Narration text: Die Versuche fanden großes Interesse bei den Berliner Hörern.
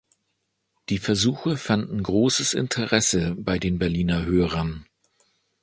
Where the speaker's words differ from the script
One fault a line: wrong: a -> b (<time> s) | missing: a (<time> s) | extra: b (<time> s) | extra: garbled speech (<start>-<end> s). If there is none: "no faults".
no faults